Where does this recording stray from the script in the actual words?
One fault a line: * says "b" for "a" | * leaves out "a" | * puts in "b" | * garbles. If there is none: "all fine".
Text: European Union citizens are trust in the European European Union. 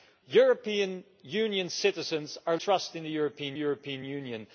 all fine